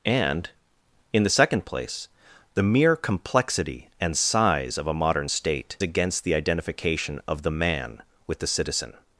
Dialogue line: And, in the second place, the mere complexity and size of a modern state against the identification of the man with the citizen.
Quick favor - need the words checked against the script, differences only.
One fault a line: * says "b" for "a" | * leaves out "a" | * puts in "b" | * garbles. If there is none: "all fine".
all fine